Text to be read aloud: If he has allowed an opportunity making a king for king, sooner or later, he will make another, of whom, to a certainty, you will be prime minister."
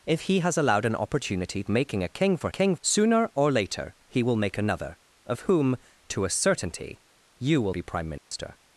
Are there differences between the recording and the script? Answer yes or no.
no